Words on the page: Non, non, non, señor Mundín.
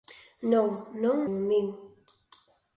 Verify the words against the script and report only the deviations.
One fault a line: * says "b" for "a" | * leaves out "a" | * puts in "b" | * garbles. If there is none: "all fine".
* leaves out "non señor"